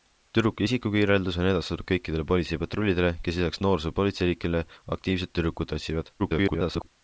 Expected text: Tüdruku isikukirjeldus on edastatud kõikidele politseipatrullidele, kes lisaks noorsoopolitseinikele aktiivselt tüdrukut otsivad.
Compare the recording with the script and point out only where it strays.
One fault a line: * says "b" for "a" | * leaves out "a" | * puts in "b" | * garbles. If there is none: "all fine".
* garbles